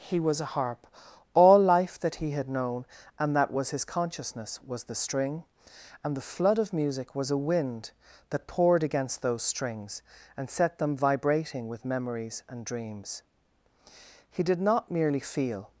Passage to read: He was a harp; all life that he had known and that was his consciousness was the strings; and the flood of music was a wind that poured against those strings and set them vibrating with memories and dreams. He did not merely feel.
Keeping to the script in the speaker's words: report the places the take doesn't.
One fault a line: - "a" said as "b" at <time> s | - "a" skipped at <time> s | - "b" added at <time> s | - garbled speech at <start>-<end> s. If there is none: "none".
- "strings" said as "string" at 5.0 s